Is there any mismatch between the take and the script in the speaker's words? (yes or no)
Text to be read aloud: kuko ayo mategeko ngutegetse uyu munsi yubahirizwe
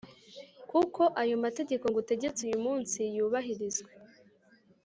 no